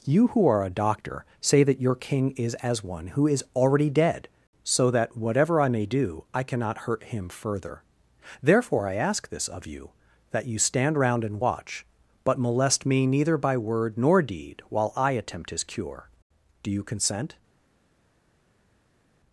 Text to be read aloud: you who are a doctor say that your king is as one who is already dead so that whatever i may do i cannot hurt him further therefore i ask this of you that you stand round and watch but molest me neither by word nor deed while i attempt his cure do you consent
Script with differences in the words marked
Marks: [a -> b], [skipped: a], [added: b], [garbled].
you who are a doctor say that your king is as one who is already dead so that whatever i may do i cannot hurt him further therefore i ask this of you that you stand round and watch but molest me neither by word nor deed while i attempt his cure do you consent